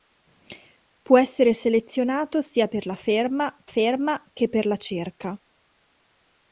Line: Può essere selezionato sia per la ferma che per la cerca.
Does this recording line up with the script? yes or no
no